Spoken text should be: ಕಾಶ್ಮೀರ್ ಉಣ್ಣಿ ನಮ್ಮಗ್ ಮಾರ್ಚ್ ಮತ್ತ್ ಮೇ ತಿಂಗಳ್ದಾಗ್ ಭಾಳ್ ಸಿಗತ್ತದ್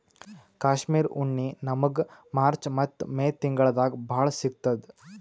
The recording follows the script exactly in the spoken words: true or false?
true